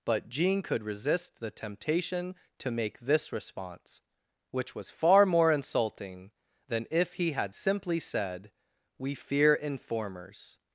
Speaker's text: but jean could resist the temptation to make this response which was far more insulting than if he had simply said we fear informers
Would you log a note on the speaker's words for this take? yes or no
no